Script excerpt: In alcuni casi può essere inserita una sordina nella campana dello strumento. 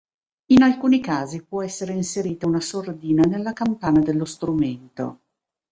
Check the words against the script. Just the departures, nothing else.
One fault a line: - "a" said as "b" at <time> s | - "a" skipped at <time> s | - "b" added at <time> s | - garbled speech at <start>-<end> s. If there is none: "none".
none